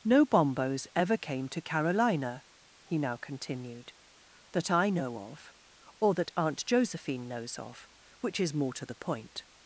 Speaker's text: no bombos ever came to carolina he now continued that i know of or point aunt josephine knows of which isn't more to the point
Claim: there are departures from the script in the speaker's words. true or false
true